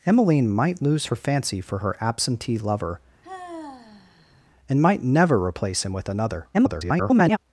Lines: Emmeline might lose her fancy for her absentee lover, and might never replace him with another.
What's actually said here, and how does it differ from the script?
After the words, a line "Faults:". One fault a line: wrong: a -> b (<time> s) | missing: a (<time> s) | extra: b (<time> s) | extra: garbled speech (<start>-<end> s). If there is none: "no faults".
Emmeline might lose her fancy for her absentee lover, and might never replace him with another. [garbled]
Faults:
extra: garbled speech (6.5-7.4 s)